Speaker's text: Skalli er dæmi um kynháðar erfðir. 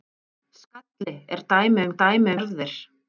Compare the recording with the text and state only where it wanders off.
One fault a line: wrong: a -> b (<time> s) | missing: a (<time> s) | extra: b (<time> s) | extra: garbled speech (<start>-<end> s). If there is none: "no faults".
wrong: kynháðar -> dæmi (2.0 s)